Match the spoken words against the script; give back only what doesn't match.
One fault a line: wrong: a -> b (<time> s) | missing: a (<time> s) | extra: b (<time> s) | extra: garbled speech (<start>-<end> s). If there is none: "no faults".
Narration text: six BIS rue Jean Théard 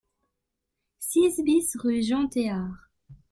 no faults